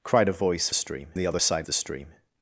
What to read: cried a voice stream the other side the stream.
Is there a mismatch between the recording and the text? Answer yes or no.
no